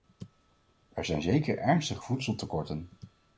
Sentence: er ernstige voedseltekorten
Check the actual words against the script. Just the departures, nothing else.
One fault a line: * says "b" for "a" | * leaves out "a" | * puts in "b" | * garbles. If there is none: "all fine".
* puts in "zijn zeker"